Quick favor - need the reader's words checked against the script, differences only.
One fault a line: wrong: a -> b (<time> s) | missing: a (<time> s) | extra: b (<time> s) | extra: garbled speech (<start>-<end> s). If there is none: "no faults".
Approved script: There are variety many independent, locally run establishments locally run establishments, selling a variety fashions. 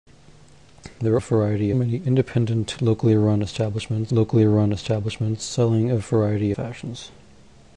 no faults